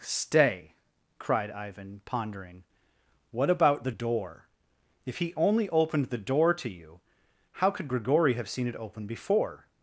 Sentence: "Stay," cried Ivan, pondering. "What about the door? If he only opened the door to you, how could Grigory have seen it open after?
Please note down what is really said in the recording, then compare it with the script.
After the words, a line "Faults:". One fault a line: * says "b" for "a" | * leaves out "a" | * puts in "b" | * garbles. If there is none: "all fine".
"Stay," cried Ivan, pondering. "What about the door? If he only opened the door to you, how could Grigory have seen it open before?
Faults:
* says "before" for "after"